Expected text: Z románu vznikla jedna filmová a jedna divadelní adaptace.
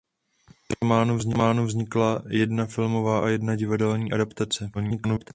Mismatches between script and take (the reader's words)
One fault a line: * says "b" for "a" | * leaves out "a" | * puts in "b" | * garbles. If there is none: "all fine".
* garbles